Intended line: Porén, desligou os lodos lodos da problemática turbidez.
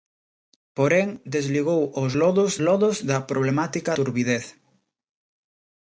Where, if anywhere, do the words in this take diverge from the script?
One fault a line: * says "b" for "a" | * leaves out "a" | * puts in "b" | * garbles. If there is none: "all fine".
all fine